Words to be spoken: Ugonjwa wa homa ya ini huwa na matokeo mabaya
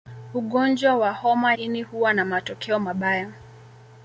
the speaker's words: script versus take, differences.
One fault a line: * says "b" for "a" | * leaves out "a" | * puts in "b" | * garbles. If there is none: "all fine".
* leaves out "ya"